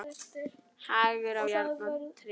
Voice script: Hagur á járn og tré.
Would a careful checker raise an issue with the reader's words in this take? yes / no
no